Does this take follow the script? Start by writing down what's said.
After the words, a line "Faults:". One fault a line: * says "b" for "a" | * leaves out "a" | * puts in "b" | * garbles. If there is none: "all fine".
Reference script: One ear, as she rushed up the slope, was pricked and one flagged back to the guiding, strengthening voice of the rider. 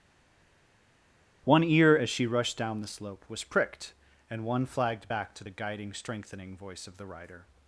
One ear, as she rushed down the slope, was pricked and one flagged back to the guiding, strengthening voice of the rider.
Faults:
* says "down" for "up"